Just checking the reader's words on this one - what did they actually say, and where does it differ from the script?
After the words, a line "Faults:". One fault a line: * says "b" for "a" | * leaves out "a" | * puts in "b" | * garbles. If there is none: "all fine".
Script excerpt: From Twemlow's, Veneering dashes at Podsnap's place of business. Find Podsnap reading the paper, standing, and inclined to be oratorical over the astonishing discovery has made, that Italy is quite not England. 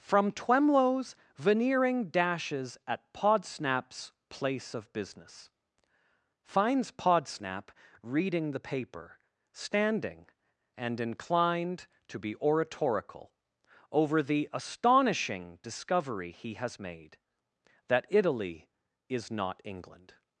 From Twemlow's, Veneering dashes at Podsnap's place of business. Finds Podsnap reading the paper, standing, and inclined to be oratorical over the astonishing discovery he has made, that Italy is not England.
Faults:
* says "Finds" for "Find"
* puts in "he"
* leaves out "quite"